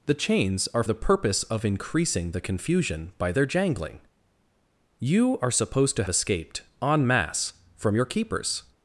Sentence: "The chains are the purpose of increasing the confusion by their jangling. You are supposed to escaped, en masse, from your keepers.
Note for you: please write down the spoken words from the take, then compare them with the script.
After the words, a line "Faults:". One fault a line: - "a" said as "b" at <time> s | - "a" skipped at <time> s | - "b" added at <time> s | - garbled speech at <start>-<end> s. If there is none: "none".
"The chains are the purpose of increasing the confusion by their jangling. You are supposed to escaped, en masse, from your keepers.
Faults:
none